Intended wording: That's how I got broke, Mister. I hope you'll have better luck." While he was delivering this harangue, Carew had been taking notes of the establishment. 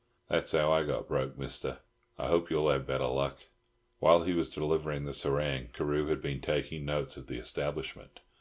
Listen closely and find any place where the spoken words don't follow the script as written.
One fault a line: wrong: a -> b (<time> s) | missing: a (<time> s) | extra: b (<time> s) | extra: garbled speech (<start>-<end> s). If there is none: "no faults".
no faults